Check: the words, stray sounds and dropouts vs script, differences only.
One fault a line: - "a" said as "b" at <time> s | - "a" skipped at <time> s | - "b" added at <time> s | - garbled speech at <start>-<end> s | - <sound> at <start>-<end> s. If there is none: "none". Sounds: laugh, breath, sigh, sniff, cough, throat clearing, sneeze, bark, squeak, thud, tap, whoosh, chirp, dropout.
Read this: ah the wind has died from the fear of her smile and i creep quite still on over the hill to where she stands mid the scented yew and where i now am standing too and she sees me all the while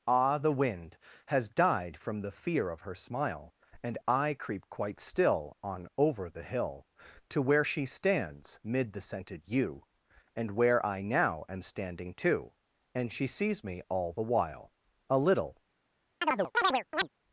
- "a little" added at 15.1 s
- chirp at 16.2-17.1 s